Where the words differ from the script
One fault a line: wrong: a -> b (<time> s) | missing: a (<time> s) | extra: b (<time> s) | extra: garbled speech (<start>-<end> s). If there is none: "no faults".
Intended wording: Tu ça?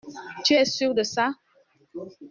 extra: es sûr de (0.5 s)